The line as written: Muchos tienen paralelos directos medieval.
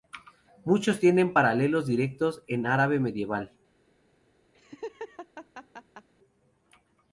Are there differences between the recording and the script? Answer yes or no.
yes